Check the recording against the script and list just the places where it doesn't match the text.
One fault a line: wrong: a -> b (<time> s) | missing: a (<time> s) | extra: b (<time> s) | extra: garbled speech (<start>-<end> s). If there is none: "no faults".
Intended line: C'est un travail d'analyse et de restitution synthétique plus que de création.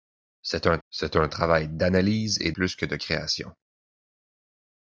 extra: c'est un (0.9 s)
missing: de restitution synthétique (2.5 s)